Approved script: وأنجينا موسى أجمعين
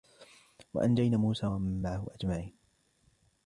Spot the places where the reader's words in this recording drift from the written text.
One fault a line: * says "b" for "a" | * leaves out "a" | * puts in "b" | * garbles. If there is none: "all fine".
* puts in "ومن معه"